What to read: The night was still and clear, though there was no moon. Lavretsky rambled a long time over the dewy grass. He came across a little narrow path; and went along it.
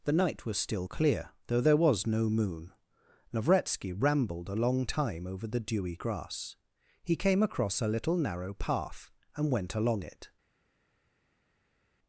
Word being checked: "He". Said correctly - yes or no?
yes